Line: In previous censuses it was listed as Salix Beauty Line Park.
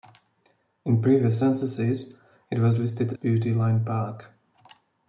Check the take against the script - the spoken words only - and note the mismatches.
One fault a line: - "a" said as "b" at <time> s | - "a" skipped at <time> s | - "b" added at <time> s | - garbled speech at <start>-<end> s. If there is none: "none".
- "as Salix" skipped at 3.1 s